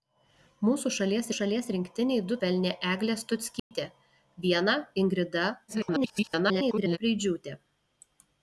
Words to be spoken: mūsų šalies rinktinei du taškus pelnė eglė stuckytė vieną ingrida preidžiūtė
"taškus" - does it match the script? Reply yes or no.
no